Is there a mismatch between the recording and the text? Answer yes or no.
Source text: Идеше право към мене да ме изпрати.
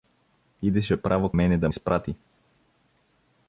yes